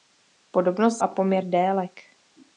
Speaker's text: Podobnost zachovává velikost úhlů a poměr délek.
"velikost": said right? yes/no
no